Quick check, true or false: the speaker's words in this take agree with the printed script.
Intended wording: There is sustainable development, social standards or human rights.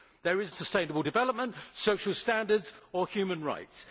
true